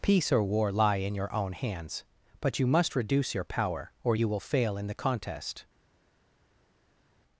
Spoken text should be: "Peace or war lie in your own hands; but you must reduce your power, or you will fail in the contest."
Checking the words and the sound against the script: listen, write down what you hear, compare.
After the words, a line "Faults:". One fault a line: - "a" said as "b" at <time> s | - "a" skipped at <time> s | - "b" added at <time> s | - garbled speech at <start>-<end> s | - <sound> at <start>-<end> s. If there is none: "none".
"Peace or war lie in your own hands; but you must reduce your power, or you will fail in the contest."
Faults:
none